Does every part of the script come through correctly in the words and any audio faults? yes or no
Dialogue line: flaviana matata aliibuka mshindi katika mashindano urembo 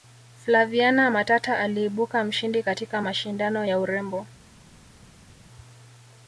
no